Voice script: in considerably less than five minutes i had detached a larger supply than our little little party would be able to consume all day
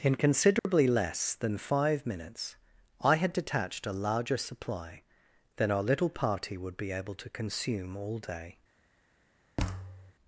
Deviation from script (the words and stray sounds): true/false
true